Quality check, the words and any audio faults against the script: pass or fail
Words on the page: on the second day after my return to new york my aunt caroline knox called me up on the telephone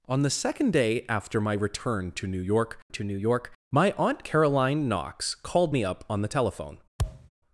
fail